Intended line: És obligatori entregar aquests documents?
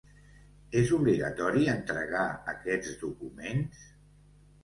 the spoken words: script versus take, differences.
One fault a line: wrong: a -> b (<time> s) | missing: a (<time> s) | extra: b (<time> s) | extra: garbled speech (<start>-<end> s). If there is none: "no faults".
no faults